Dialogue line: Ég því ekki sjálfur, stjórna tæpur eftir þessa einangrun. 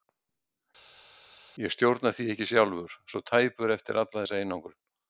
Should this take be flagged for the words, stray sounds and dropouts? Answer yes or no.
yes